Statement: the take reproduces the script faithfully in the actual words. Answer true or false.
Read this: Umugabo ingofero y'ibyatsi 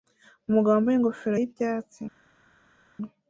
false